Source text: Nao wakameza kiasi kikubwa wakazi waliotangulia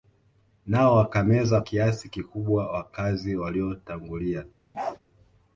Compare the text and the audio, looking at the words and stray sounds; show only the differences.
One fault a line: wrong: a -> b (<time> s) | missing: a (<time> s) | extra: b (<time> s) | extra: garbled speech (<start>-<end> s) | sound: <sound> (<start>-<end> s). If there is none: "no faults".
sound: bark (4.7-5.0 s)